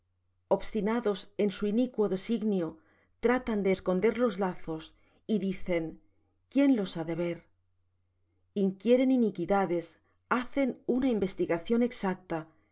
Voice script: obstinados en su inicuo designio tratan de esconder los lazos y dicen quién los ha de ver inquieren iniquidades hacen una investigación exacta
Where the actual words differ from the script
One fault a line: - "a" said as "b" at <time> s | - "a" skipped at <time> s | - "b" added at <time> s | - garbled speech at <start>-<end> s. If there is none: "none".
none